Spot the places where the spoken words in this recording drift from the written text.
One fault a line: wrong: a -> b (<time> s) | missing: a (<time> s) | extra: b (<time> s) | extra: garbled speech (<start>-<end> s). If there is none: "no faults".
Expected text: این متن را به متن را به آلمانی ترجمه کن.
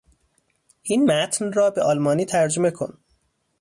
missing: متن را به (1.8 s)